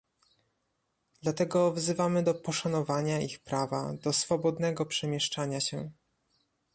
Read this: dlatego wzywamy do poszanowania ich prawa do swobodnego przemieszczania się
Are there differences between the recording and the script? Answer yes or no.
no